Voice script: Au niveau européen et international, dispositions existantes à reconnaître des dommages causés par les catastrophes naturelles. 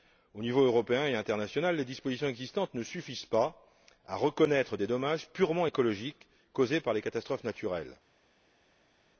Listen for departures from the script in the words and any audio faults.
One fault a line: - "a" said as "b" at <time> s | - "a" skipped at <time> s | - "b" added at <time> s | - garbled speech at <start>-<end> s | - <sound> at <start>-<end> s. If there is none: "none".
- "les" added at 1.8 s
- "ne suffisent pas" added at 2.7 s
- "purement écologiques" added at 5.3 s